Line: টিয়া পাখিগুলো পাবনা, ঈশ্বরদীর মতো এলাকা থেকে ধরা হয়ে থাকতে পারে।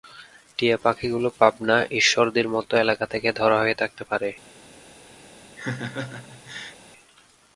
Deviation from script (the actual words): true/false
false